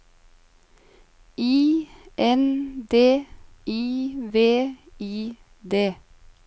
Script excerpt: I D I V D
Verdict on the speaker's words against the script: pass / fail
fail